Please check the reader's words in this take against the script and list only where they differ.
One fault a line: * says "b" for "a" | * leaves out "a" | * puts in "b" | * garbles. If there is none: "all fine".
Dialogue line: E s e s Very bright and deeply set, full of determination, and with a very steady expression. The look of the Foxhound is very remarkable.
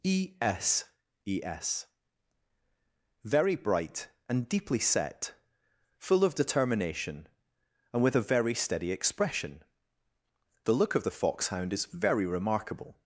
all fine